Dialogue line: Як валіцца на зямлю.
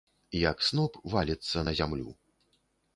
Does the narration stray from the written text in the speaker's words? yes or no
yes